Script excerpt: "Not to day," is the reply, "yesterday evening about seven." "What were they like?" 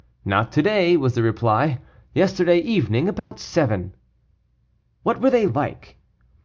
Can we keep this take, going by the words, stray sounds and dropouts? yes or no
no